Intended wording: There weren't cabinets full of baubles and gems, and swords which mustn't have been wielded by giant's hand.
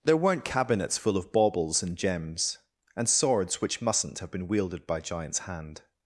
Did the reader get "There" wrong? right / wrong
right